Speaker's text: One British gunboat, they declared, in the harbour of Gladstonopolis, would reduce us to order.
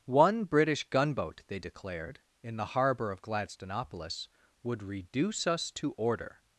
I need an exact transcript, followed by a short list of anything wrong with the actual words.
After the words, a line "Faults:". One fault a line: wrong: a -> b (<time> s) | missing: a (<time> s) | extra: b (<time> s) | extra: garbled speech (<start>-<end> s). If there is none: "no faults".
One British gunboat, they declared, in the harbour of Gladstonopolis, would reduce us to order.
Faults:
no faults